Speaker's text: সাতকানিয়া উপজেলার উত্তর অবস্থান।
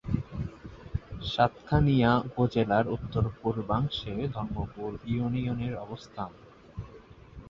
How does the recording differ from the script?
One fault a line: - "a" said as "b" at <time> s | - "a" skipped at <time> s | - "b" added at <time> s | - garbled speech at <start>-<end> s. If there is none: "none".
- "পূর্বাংশে ধর্মপুর ইউনিয়নের" added at 3.4 s